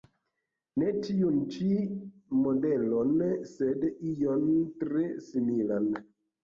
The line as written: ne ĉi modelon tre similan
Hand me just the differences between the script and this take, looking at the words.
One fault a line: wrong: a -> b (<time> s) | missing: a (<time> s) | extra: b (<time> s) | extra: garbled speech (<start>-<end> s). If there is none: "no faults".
extra: tiun (1.1 s)
extra: sed ion (3.6 s)